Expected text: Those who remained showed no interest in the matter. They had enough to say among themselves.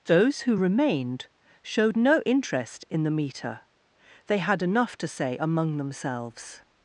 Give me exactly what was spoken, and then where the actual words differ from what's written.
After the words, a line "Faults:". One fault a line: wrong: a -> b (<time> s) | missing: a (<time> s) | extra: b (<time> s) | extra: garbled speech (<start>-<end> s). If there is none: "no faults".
Those who remained showed no interest in the meter. They had enough to say among themselves.
Faults:
wrong: matter -> meter (3.1 s)